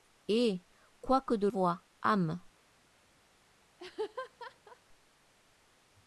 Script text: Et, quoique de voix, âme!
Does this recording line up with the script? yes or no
yes